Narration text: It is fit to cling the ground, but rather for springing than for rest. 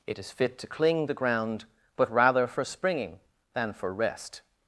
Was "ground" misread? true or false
false